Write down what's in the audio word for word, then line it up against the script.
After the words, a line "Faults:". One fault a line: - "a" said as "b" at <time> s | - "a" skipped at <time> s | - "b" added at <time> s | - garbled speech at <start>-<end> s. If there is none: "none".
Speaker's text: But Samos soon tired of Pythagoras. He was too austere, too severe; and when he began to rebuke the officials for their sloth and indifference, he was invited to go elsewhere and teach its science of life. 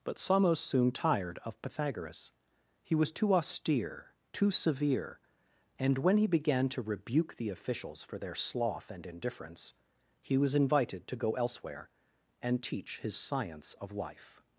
But Samos soon tired of Pythagoras. He was too austere, too severe; and when he began to rebuke the officials for their sloth and indifference, he was invited to go elsewhere and teach his science of life.
Faults:
- "its" said as "his" at 13.0 s